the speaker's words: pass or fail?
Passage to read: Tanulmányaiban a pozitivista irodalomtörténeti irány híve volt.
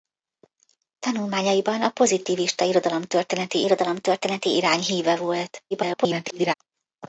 fail